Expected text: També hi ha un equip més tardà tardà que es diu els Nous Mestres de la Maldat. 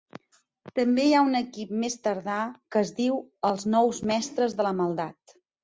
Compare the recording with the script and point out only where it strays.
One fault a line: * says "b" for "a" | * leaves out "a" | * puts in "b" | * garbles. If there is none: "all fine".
* leaves out "tardà"